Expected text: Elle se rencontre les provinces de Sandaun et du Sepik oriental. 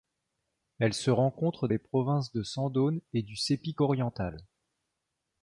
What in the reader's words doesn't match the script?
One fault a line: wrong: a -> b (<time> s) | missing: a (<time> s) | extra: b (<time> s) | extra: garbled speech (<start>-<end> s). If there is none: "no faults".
no faults